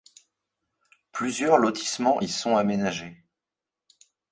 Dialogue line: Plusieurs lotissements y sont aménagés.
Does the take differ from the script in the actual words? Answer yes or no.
no